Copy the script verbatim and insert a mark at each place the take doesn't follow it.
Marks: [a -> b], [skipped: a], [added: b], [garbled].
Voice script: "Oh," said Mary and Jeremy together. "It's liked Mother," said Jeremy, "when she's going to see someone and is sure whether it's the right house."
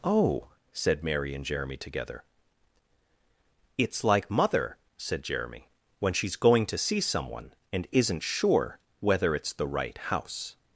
"Oh," said Mary and Jeremy together. "It's [liked -> like] Mother," said Jeremy, "when she's going to see someone and [is -> isn't] sure whether it's the right house."